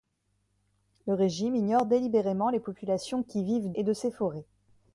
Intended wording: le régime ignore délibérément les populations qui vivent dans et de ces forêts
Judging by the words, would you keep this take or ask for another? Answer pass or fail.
fail